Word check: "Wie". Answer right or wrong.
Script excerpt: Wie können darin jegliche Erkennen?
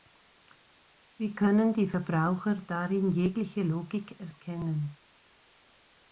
right